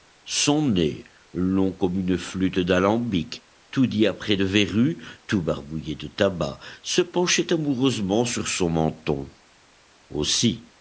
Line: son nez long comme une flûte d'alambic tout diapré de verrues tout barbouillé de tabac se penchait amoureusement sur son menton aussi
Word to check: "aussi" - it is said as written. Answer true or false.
true